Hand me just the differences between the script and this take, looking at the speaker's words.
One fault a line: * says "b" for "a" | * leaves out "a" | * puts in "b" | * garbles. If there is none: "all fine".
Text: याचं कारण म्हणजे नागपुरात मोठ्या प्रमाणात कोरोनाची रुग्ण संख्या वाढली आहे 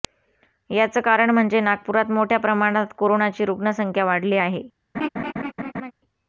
all fine